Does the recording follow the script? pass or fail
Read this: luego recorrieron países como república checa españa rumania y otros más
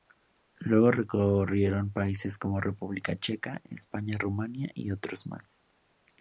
pass